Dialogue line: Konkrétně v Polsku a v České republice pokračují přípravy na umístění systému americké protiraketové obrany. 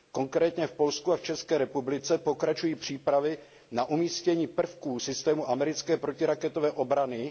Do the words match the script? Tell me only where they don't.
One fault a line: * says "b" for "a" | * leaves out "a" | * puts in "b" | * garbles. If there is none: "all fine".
* puts in "prvků"